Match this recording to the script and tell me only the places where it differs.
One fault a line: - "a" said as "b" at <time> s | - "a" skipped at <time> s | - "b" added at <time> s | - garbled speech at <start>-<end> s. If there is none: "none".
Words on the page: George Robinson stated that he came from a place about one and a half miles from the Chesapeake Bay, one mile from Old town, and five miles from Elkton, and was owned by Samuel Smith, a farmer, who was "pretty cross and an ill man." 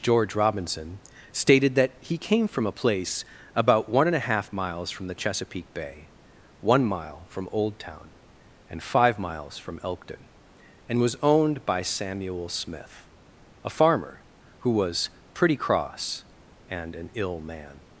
none